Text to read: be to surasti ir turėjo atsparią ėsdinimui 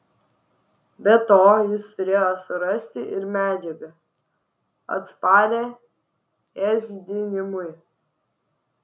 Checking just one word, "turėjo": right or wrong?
wrong